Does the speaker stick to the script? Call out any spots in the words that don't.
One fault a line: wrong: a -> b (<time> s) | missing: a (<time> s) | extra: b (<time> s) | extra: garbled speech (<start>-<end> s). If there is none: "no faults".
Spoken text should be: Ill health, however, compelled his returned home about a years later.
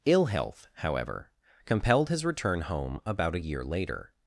wrong: returned -> return (2.2 s)
wrong: years -> year (3.4 s)